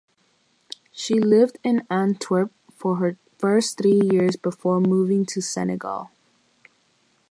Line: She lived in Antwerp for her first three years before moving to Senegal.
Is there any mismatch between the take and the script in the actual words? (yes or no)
no